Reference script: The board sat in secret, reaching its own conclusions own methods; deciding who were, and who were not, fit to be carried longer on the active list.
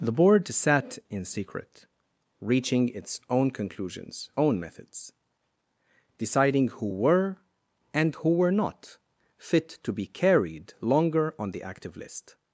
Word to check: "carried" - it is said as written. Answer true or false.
true